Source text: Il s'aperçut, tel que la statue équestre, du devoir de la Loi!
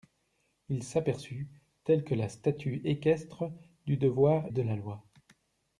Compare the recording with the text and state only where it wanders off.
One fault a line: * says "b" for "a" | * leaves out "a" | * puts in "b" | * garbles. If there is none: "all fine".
all fine